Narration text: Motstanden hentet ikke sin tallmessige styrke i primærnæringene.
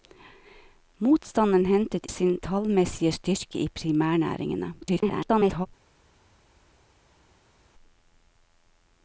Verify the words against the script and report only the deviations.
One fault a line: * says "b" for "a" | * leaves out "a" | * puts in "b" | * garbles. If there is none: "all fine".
* leaves out "ikke"
* garbles